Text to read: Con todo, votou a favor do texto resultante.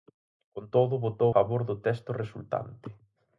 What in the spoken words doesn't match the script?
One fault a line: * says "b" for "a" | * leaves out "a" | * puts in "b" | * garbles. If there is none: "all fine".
* leaves out "a"